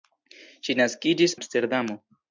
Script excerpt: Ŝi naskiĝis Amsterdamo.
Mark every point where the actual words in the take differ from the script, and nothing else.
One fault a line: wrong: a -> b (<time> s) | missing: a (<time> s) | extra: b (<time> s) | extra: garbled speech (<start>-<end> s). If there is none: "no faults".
no faults